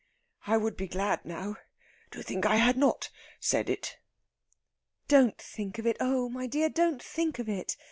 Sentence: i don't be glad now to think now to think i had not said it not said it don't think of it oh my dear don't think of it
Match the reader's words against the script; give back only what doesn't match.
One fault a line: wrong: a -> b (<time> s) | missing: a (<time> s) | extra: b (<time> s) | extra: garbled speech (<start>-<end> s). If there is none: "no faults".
wrong: don't -> would (0.6 s)
missing: now to think (2.4 s)
missing: not said it (4.0 s)